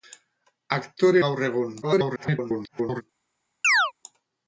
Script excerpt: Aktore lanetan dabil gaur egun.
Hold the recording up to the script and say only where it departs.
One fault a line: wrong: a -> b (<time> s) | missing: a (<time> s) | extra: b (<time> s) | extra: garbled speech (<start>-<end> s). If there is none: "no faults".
missing: lanetan dabil (1.2 s)
extra: garbled speech (1.8-3.0 s)